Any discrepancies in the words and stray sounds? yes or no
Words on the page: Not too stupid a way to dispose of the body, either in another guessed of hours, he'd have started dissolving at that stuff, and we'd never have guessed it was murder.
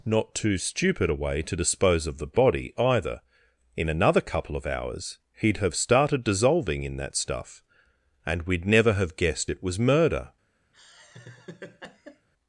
yes